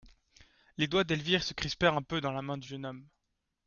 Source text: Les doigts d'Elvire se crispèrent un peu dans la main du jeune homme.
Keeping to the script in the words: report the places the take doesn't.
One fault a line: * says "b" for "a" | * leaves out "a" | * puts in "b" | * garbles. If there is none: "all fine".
all fine